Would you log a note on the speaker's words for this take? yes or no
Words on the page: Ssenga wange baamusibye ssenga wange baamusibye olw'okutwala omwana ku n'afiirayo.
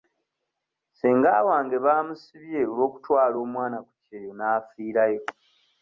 yes